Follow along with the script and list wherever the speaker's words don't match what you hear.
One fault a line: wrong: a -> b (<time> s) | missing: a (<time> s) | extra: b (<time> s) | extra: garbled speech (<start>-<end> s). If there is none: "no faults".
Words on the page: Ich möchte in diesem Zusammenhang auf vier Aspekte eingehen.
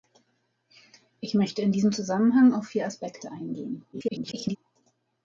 extra: garbled speech (3.9-4.6 s)